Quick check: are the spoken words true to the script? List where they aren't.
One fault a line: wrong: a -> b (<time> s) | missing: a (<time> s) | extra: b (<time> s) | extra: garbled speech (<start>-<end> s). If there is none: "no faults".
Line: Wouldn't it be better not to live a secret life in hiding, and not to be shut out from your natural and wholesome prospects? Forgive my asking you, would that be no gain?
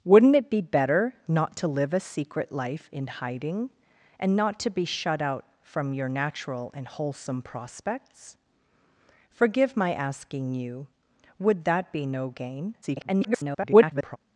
extra: garbled speech (12.8-14.2 s)